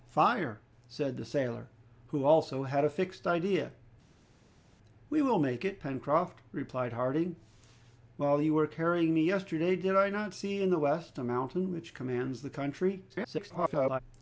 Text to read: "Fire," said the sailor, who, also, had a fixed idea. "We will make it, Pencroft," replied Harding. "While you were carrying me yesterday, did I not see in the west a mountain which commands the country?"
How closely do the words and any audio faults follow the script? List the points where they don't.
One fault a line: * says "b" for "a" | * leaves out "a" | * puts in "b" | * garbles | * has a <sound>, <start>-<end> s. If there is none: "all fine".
* garbles